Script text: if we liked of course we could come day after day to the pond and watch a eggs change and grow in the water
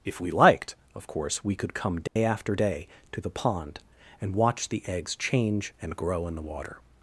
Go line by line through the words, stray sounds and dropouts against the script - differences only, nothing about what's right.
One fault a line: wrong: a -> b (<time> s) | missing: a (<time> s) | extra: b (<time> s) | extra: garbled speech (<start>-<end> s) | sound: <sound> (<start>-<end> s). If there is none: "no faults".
sound: dropout (2.1-2.2 s)
wrong: a -> the (4.7 s)